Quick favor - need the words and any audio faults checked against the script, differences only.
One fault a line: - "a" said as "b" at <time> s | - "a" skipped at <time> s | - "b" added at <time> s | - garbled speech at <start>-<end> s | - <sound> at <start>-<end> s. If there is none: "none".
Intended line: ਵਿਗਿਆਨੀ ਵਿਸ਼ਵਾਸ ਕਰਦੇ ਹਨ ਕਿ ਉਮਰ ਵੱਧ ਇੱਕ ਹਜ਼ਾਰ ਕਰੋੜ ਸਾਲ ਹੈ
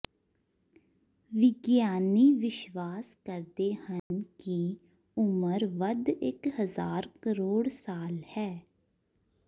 - dropout at 4.0-4.1 s